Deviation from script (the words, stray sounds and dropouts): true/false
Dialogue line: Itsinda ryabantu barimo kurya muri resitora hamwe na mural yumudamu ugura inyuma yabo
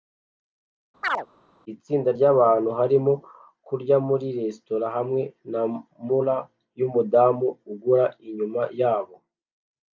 true